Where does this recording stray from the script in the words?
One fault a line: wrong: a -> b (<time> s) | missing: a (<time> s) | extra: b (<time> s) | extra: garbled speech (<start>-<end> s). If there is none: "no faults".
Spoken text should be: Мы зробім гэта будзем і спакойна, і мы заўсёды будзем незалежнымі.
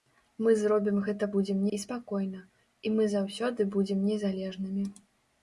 no faults